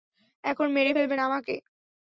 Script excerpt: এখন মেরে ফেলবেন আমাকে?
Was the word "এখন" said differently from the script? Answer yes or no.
no